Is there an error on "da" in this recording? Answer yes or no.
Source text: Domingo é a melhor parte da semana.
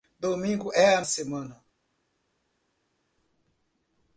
yes